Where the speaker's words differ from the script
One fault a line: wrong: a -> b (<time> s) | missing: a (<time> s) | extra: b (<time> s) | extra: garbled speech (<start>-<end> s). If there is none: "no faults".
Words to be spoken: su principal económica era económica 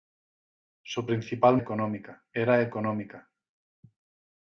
no faults